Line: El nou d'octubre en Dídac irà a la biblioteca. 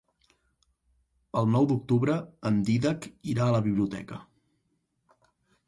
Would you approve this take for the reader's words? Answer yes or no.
yes